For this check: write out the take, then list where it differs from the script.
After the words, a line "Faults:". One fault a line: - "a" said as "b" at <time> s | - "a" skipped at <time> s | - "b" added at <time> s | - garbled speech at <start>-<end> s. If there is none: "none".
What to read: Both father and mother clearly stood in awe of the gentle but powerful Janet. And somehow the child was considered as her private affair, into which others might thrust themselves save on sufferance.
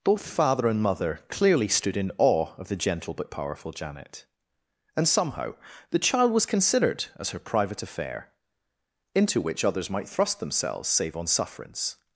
Both father and mother clearly stood in awe of the gentle but powerful Janet. And somehow the child was considered as her private affair, into which others might thrust themselves save on sufferance.
Faults:
none